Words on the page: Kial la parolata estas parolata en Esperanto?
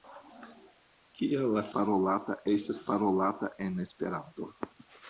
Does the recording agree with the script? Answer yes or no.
yes